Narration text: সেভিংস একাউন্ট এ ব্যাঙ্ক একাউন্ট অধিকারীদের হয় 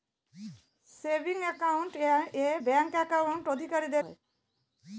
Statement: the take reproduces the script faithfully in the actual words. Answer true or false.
true